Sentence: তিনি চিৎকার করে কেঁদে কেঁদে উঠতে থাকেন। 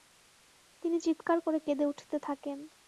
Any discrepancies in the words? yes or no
yes